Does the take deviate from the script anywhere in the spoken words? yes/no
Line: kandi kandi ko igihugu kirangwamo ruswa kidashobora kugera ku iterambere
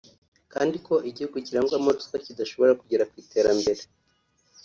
yes